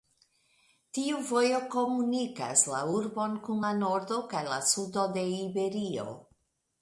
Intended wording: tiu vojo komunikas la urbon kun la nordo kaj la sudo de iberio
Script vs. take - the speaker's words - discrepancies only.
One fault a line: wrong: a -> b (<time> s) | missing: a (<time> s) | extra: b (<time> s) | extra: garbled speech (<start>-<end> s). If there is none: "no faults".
no faults